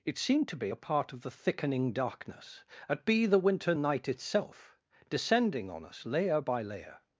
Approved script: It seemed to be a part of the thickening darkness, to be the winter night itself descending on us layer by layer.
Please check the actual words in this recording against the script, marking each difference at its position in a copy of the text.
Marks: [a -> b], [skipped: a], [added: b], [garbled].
It seemed to be a part of the thickening darkness, [to -> at] be the winter night itself descending on us layer by layer.